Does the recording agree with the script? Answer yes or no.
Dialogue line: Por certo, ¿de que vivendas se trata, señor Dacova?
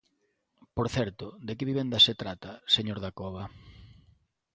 yes